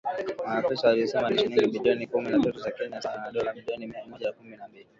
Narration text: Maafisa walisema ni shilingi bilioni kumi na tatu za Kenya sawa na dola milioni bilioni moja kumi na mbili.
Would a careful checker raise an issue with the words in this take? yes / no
yes